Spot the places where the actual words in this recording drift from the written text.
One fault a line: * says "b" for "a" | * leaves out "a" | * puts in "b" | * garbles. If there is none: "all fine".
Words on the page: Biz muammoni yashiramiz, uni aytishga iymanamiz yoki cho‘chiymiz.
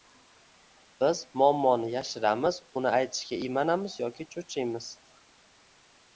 all fine